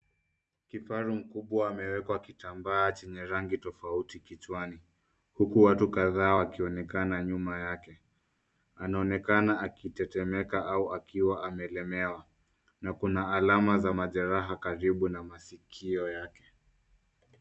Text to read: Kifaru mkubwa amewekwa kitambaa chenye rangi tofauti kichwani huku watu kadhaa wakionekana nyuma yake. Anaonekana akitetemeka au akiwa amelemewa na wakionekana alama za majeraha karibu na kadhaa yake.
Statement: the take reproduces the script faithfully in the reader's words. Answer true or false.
false